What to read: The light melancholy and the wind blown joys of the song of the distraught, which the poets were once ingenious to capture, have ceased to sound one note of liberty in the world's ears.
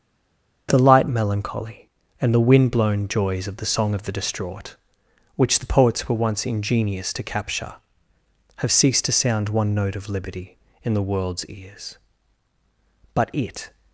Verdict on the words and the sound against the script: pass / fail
fail